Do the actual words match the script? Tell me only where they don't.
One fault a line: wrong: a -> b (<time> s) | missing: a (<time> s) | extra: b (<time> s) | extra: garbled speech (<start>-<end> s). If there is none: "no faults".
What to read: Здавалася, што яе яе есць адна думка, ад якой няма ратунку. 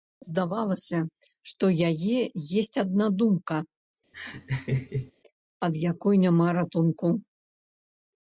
missing: яе (2.1 s)